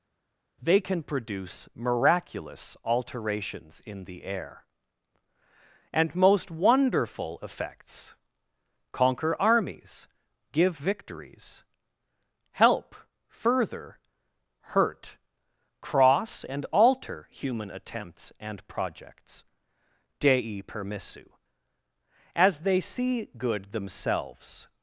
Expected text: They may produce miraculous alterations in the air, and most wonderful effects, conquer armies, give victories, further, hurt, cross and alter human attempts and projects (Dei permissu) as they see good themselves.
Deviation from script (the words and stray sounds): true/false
true